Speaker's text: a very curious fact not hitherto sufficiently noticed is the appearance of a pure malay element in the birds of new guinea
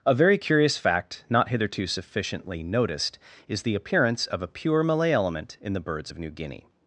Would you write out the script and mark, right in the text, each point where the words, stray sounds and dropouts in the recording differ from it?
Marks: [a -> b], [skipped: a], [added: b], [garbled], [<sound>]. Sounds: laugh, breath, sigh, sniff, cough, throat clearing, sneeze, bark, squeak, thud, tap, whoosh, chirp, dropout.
a very curious fact not hitherto sufficiently noticed is the appearance of a pure malay element in the birds of new guinea